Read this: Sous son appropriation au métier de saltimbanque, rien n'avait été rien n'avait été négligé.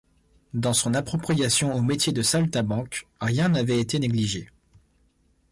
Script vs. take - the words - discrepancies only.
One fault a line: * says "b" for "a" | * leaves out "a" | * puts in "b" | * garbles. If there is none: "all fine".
* says "Dans" for "Sous"
* leaves out "rien n'avait été"